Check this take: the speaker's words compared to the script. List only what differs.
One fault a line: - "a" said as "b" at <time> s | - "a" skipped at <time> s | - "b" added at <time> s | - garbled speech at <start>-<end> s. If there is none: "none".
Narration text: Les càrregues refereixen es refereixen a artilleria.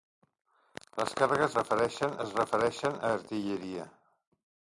none